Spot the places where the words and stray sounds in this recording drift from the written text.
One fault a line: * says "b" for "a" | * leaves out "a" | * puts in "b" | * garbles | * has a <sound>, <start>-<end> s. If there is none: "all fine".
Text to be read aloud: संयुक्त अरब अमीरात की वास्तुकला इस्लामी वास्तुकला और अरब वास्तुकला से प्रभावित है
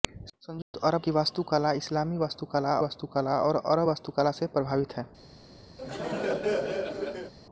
* has a dropout, 0.6-0.7 s
* leaves out "अमीरात"
* puts in "वास्तुकला"
* has a laugh, 5.8-7.3 s